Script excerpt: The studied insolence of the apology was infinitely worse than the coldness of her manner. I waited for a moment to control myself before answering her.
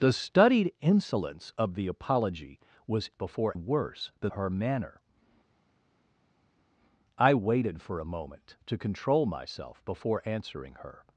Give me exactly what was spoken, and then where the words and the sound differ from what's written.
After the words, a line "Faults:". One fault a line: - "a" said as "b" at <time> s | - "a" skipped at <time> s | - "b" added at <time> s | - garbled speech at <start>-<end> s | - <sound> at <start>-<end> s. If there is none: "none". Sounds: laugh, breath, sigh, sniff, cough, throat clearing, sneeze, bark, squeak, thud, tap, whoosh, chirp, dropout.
The studied insolence of the apology was before worse than her manner. I waited for a moment to control myself before answering her.
Faults:
- "infinitely" said as "before" at 3.2 s
- "the coldness of" skipped at 4.3 s